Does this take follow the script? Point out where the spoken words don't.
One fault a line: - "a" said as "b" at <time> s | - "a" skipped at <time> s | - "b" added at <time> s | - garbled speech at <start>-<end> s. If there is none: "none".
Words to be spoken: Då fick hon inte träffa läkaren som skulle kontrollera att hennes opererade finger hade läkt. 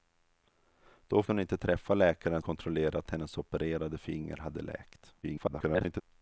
- "fick" skipped at 1.2 s
- "som skulle" skipped at 2.4 s
- garbled speech at 5.2-6.0 s